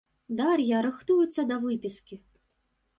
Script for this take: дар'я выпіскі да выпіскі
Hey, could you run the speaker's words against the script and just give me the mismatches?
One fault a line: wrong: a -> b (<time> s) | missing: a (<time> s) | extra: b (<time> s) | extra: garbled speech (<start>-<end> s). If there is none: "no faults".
wrong: выпіскі -> рыхтуецца (0.9 s)